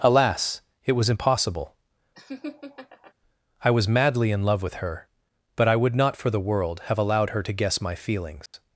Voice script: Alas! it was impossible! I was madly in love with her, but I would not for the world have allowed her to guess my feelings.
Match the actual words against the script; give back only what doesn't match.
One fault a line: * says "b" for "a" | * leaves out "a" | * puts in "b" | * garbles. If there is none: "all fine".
all fine